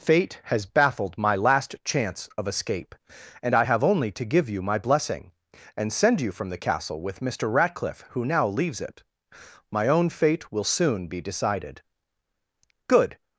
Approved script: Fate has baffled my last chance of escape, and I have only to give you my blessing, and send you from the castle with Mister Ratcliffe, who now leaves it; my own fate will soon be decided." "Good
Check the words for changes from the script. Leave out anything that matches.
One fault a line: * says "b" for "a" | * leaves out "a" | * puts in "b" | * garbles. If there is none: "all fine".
all fine